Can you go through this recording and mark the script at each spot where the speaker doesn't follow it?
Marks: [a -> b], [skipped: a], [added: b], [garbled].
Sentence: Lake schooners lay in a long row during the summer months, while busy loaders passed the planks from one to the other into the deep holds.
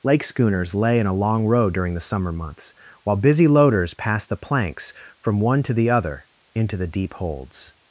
Lake schooners lay in a long row during the summer months, while busy loaders passed the planks from one to the other into the deep holds.